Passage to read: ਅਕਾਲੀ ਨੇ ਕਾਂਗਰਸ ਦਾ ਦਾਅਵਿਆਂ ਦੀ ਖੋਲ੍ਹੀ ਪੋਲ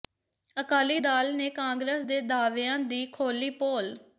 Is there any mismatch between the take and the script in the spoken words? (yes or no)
yes